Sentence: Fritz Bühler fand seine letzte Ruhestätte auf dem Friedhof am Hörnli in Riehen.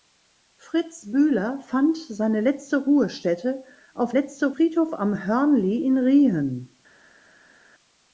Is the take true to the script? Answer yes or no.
no